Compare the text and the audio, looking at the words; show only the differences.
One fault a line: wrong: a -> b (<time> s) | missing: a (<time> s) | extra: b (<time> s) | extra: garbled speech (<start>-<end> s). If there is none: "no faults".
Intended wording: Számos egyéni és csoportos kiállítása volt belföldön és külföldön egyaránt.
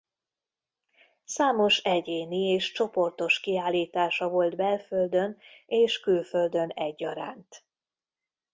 no faults